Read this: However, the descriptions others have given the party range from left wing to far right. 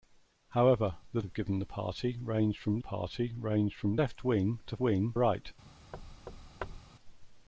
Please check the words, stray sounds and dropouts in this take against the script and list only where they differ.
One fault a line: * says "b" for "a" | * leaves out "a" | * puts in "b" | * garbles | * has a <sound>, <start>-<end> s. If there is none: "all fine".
* leaves out "descriptions others"
* puts in "party range from"
* says "wing" for "far"
* has a thud, 5.9-6.8 s